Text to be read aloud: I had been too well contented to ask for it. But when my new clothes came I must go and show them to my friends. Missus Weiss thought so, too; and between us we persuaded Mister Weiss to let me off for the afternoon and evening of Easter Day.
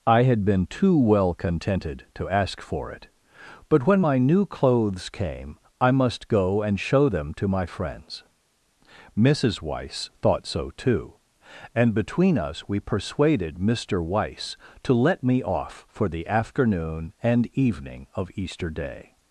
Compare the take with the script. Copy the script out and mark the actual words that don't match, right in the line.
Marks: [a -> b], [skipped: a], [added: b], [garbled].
I had been too well contented to ask for it. But when my new clothes came I must go and show them to my friends. Missus Weiss thought so, too; and between us we persuaded Mister Weiss to let me off for the afternoon and evening of Easter Day.